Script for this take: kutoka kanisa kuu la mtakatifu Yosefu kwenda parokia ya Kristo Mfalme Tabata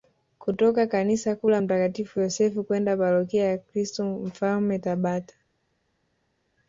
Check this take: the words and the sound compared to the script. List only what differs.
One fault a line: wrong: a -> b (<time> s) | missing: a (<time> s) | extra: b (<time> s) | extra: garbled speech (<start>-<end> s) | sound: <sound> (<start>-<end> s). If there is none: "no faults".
no faults